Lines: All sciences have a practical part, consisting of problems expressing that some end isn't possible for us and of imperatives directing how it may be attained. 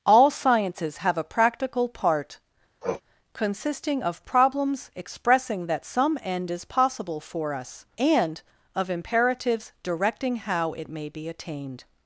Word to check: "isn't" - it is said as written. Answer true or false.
false